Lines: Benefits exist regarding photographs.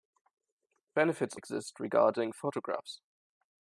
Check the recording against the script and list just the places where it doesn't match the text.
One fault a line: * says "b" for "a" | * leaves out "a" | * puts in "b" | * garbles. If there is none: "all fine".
all fine